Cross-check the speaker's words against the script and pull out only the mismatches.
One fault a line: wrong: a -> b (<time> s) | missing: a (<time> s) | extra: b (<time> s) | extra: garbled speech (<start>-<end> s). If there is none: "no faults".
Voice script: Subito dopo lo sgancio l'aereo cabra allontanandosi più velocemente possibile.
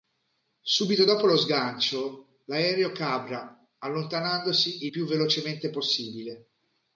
no faults